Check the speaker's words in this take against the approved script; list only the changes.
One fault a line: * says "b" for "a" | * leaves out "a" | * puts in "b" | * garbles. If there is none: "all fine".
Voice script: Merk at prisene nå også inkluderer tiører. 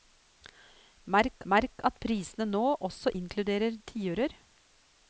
* puts in "merk"